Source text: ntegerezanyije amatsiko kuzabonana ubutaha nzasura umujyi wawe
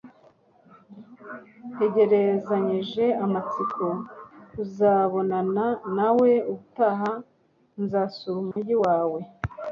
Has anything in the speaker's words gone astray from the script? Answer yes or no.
yes